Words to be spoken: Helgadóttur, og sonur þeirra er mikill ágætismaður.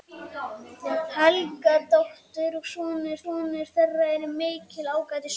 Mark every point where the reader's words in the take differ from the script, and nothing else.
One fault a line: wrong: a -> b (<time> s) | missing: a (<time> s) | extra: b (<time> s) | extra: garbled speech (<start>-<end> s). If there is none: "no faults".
extra: sonur (3.2 s)